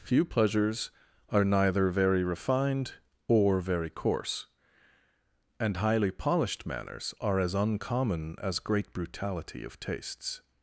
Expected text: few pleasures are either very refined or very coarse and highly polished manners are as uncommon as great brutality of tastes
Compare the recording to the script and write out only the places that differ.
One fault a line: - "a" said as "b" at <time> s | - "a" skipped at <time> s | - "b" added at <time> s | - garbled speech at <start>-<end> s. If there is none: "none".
- "either" said as "neither" at 1.4 s